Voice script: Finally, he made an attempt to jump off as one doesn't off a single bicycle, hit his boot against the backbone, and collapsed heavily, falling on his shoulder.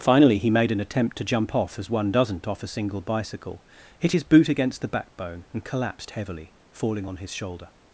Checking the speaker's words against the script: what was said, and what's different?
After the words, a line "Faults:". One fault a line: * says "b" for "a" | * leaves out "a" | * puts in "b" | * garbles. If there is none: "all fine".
Finally, he made an attempt to jump off as one doesn't off a single bicycle, hit his boot against the backbone, and collapsed heavily, falling on his shoulder.
Faults:
all fine